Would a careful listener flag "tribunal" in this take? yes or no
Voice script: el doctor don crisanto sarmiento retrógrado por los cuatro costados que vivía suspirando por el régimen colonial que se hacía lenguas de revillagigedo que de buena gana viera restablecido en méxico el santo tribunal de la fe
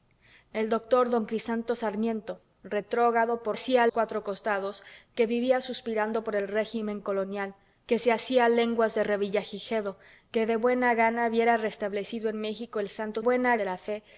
yes